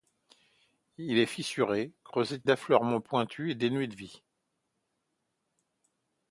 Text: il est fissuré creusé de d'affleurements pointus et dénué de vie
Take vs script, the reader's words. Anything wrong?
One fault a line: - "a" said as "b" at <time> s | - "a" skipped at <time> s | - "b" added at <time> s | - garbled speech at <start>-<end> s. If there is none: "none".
none